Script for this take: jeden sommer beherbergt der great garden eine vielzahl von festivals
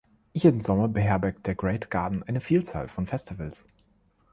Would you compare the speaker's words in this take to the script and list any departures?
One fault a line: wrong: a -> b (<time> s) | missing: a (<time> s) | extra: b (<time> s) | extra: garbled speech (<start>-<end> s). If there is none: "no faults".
no faults